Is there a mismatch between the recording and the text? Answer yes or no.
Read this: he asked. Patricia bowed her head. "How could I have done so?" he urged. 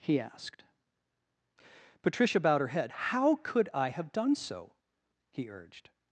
no